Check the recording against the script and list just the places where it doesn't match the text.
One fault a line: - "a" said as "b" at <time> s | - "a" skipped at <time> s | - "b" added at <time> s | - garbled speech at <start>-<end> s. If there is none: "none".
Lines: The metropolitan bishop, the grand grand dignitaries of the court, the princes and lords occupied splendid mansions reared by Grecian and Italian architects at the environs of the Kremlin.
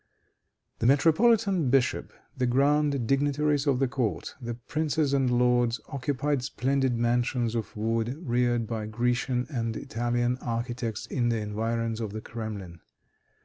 - "grand" skipped at 3.0 s
- "of wood" added at 7.5 s
- "at" said as "in" at 11.0 s